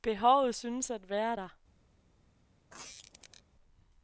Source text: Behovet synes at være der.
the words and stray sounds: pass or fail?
fail